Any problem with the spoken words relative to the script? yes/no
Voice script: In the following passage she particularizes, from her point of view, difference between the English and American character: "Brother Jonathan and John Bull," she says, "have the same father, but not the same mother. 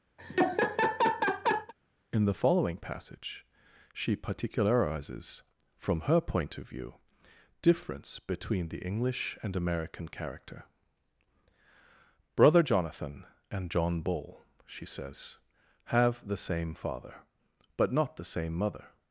no